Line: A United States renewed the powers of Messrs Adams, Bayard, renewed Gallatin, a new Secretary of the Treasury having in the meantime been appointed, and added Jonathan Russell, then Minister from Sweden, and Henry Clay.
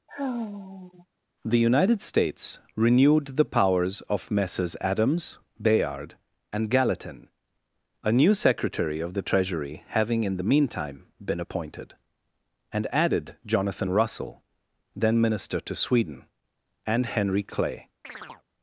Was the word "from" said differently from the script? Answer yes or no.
yes